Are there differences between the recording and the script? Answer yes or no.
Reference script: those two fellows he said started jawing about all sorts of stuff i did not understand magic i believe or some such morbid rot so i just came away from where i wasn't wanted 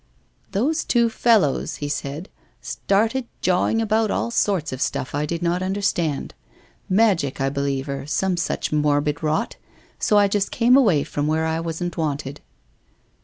no